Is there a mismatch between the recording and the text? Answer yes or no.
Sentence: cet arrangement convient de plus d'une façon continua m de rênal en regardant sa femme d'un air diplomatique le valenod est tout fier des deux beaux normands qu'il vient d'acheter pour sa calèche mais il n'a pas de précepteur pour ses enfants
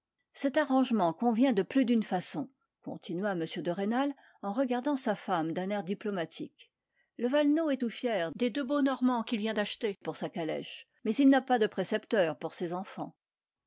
no